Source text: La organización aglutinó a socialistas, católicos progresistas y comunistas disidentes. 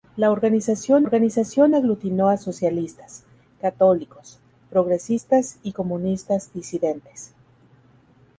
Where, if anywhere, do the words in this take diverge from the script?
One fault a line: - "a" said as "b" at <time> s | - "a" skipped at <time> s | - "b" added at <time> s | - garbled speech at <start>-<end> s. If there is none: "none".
- "organización" added at 1.0 s